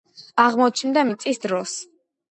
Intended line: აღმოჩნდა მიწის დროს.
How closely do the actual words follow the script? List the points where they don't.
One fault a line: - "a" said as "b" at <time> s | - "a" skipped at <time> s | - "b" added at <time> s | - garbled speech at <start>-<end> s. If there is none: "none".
none